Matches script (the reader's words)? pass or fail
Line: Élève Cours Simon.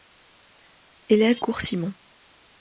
pass